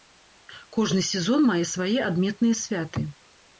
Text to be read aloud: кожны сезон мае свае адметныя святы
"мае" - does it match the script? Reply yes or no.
yes